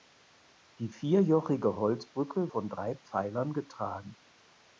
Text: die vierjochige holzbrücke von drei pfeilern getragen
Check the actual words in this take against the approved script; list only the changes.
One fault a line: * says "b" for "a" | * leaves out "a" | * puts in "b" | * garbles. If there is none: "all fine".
all fine